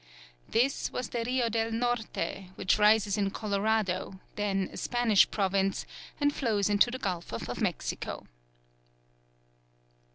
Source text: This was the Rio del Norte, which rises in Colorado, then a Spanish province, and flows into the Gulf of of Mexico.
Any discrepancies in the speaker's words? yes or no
no